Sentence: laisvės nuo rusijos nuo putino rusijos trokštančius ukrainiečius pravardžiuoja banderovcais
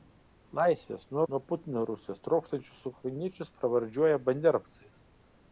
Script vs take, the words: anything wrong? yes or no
yes